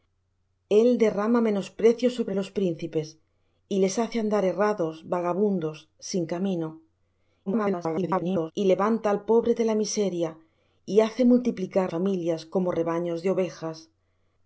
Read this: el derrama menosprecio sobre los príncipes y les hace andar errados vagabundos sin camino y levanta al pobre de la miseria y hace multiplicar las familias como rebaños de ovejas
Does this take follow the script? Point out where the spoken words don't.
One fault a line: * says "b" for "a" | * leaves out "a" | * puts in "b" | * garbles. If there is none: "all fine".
* garbles
* leaves out "las"